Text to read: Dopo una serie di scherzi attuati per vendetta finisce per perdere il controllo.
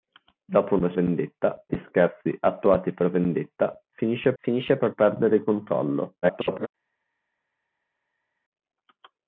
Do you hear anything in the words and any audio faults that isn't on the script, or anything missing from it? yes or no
yes